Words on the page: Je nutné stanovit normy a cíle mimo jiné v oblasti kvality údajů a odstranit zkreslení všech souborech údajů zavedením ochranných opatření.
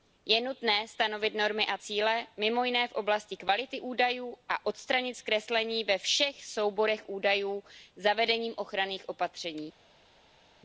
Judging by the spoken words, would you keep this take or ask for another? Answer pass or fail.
fail